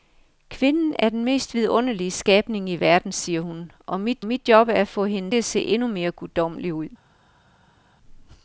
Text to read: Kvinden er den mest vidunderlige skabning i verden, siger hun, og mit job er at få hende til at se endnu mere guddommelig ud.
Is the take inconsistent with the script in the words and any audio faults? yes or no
yes